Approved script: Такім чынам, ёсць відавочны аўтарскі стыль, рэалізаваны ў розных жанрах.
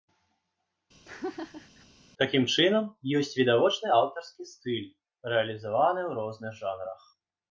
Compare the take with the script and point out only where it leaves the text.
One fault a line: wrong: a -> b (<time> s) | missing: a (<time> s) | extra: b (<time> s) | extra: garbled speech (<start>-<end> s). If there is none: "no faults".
no faults